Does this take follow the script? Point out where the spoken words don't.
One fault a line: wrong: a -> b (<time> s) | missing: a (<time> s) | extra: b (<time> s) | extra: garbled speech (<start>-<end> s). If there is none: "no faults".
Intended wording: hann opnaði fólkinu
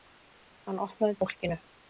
no faults